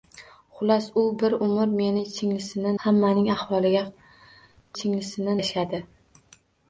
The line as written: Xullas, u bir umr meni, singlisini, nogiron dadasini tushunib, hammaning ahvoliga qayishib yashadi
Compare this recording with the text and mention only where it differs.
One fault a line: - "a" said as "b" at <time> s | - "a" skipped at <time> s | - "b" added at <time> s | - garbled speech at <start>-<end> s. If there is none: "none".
- "nogiron dadasini tushunib" skipped at 2.7 s
- "qayishib" said as "singlisini" at 4.8 s